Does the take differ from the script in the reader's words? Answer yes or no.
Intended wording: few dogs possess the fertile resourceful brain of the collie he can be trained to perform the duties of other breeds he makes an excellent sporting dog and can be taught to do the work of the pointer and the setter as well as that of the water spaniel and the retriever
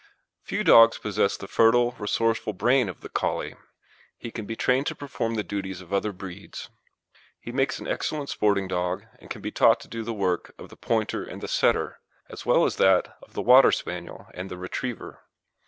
no